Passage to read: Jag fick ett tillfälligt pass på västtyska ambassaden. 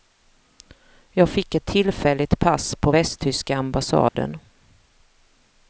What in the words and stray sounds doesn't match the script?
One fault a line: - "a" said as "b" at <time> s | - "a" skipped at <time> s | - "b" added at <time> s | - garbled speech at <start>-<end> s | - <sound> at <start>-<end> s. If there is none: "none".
- dropout at 4.1-4.1 s